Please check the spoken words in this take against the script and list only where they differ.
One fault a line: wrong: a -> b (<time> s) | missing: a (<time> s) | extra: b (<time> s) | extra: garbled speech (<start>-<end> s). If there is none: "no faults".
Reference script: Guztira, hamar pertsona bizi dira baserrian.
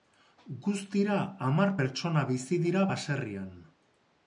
no faults